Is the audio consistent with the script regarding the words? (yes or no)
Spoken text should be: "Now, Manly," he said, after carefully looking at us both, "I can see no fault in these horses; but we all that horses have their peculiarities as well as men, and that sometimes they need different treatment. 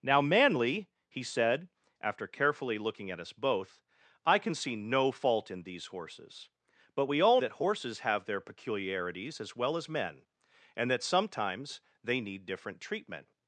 yes